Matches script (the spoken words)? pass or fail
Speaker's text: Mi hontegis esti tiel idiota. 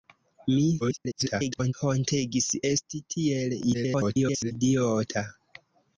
fail